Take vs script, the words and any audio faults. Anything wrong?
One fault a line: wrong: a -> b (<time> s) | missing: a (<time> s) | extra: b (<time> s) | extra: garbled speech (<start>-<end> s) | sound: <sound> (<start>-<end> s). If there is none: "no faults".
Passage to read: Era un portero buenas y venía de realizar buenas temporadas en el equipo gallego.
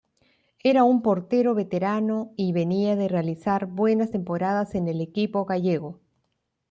wrong: buenas -> veterano (1.5 s)